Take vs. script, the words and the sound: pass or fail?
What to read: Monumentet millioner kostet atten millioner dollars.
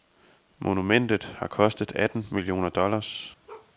fail